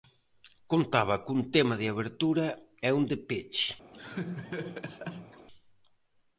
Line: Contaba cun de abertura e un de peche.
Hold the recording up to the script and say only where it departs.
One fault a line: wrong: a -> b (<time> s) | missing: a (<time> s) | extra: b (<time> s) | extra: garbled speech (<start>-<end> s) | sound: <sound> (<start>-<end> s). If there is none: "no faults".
extra: tema (1.5 s)
sound: laugh (3.9-5.5 s)